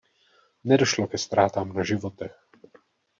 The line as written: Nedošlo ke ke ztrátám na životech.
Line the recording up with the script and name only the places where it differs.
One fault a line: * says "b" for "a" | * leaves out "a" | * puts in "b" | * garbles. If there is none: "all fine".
* leaves out "ke"